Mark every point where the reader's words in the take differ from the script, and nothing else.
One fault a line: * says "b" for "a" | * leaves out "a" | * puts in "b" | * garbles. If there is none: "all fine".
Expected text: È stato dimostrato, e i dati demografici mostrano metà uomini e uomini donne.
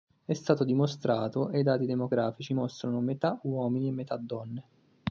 * says "metà" for "uomini"